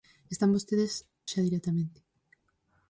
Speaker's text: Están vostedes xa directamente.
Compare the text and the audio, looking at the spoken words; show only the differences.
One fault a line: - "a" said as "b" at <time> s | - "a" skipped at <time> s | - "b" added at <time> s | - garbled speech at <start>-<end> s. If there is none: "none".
none